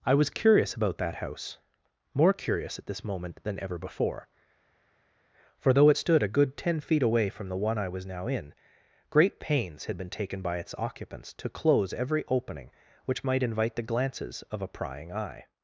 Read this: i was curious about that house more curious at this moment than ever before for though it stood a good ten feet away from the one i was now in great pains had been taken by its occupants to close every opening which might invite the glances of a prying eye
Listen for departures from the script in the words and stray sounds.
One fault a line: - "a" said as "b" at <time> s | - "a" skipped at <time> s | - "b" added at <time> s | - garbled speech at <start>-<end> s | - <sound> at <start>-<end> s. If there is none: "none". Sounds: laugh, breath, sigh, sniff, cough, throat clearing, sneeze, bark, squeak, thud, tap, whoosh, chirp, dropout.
none